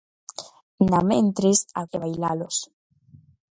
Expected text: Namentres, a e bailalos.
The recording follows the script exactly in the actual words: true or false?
true